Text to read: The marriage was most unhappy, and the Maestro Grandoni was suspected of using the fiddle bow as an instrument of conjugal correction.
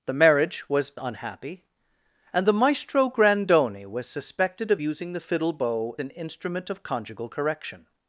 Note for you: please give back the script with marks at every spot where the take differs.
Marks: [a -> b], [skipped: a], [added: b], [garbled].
The marriage was [skipped: most] unhappy, and the Maestro Grandoni was suspected of using the fiddle bow [skipped: as] an instrument of conjugal correction.